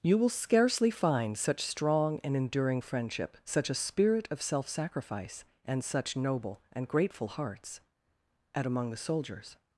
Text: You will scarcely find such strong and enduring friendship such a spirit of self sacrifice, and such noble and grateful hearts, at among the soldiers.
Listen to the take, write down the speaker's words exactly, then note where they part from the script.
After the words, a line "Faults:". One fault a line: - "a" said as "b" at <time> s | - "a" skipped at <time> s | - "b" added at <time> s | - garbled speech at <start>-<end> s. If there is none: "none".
You will scarcely find such strong and enduring friendship such a spirit of self sacrifice, and such noble and grateful hearts, at among the soldiers.
Faults:
none